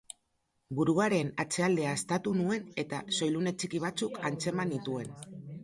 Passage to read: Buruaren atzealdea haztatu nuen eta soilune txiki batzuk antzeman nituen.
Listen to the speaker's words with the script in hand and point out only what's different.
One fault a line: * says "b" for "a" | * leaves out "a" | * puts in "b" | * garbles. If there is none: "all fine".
all fine